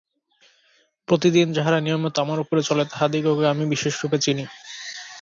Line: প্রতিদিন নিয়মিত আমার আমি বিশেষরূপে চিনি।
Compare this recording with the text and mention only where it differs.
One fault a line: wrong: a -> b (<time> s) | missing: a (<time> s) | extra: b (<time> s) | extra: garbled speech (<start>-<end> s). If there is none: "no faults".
extra: যাহারা (1.5 s)
extra: উপরে চলে তাহাদিগকে (2.4 s)